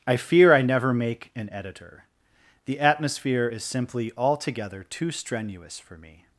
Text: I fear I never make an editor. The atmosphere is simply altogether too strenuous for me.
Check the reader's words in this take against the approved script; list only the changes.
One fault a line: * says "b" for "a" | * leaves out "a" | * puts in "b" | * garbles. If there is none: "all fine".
all fine